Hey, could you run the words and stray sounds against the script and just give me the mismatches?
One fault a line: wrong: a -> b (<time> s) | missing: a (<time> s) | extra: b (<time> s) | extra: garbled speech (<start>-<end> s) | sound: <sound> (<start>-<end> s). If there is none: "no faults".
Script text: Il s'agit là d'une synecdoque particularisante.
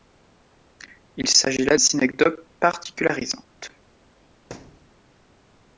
missing: d'une (1.8 s)
sound: thud (4.5-5.0 s)